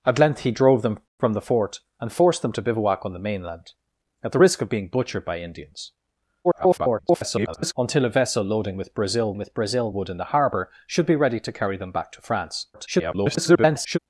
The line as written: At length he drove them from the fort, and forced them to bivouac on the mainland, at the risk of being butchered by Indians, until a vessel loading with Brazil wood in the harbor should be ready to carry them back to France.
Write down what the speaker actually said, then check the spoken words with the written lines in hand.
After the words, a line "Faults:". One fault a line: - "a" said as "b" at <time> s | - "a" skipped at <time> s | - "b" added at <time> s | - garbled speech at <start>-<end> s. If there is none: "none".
At length he drove them from the fort, and forced them to bivouac on the mainland, at the risk of being butchered by Indians, [garbled] until a vessel loading with Brazil with Brazil wood in the harbor should be ready to carry them back to France. [garbled]
Faults:
- garbled speech at 6.4-7.7 s
- "with Brazil" added at 9.4 s
- garbled speech at 12.7-14.0 s